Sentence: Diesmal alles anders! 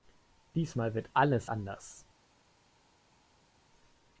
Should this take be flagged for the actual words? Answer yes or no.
yes